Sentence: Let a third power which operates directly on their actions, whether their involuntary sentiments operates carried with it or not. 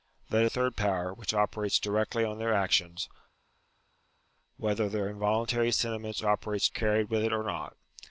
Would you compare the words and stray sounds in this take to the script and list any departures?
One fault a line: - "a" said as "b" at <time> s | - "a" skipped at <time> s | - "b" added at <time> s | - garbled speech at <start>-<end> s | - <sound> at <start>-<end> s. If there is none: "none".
none